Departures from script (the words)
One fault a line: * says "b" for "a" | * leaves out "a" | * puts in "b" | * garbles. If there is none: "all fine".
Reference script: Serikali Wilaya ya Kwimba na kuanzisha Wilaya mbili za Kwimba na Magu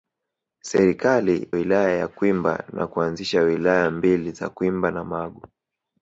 all fine